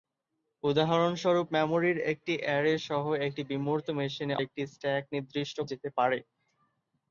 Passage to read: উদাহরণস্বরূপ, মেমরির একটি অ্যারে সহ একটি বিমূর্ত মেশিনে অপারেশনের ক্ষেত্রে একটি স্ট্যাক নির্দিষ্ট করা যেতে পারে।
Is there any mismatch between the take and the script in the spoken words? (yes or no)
yes